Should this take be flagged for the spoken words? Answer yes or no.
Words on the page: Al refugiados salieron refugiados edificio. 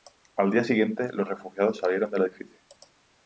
yes